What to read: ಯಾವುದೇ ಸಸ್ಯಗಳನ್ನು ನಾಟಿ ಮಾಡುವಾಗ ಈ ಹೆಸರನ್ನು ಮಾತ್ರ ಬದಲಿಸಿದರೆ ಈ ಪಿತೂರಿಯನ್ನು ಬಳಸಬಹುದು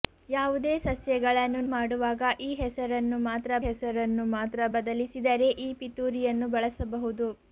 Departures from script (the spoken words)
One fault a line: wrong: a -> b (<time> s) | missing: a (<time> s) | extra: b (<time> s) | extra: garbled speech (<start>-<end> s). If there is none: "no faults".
missing: ನಾಟಿ (1.6 s)
extra: ಹೆಸರನ್ನು ಮಾತ್ರ (3.6 s)